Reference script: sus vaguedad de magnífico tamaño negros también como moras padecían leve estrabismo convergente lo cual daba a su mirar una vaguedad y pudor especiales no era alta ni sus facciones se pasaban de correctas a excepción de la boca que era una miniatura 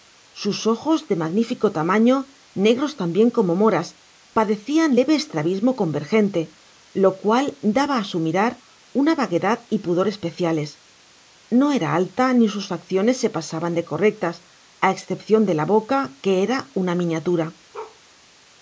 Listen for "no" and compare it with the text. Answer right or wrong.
right